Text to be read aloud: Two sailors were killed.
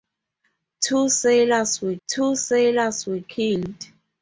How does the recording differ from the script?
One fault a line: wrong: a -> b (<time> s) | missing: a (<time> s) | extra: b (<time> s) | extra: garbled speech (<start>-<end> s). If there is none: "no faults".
extra: two sailors were (2.1 s)